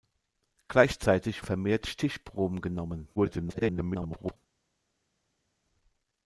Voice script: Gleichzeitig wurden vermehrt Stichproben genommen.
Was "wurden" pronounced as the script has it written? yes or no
no